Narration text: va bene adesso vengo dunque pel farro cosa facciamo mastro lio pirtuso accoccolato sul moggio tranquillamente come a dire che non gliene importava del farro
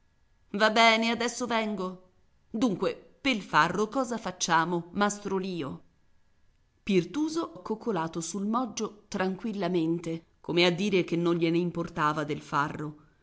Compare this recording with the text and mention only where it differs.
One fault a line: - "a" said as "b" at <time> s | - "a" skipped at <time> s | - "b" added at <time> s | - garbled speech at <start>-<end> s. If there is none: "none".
none